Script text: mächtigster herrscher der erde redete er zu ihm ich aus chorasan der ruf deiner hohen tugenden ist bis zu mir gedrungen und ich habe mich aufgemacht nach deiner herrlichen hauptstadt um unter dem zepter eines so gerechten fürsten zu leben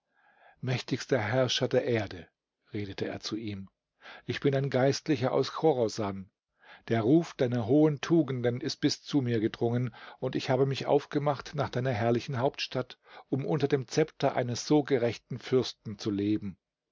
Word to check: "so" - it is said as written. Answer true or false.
true